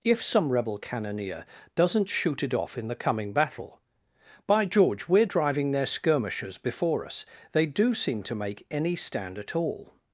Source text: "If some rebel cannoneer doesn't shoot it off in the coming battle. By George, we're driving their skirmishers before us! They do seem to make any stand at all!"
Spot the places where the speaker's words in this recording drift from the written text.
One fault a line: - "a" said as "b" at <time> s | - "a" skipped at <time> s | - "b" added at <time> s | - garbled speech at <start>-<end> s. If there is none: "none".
none